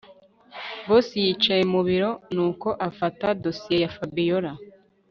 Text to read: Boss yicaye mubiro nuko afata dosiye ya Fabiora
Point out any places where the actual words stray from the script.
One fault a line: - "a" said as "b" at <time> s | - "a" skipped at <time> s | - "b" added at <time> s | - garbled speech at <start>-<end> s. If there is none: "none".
none